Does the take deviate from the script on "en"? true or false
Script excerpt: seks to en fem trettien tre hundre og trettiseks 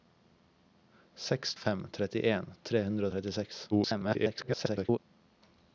true